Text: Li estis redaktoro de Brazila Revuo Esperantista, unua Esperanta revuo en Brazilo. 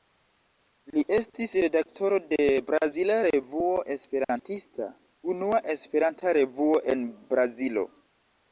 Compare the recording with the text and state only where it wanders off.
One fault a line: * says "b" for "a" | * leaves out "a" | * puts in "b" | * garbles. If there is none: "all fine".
all fine